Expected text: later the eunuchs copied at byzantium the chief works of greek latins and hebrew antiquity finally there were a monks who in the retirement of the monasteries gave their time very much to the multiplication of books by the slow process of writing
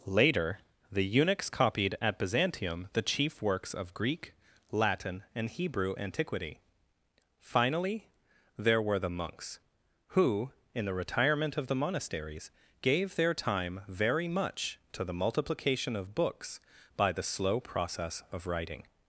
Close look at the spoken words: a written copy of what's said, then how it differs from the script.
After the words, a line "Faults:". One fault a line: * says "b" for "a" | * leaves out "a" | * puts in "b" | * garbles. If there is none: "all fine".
later the eunuchs copied at byzantium the chief works of greek latin and hebrew antiquity finally there were the monks who in the retirement of the monasteries gave their time very much to the multiplication of books by the slow process of writing
Faults:
* says "latin" for "latins"
* says "the" for "a"